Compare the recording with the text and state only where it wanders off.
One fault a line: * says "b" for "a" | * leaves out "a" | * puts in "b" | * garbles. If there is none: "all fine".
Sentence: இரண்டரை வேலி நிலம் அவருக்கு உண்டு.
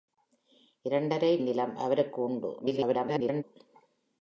* leaves out "வேலி"
* garbles